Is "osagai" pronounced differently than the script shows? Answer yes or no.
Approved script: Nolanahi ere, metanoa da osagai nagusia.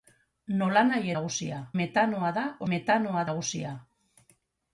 yes